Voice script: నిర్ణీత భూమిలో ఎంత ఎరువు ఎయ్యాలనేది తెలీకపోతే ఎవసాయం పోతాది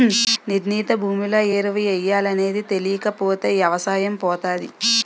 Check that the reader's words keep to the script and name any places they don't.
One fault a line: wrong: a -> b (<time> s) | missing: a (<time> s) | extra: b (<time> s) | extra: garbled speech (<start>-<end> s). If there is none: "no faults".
missing: ఎంత (1.4 s)